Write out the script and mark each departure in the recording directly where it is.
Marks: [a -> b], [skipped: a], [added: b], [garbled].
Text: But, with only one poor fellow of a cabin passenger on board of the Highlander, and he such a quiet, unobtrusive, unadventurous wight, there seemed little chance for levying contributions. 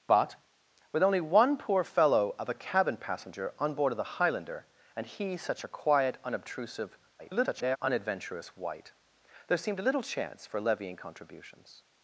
But, with only one poor fellow of a cabin passenger on board of the Highlander, and he such a quiet, unobtrusive, [garbled] unadventurous wight, there seemed little chance for levying contributions.